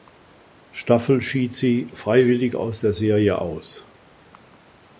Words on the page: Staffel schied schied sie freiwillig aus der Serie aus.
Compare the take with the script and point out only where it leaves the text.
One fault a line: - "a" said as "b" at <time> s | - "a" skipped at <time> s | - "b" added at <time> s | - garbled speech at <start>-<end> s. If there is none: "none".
- "schied" skipped at 1.5 s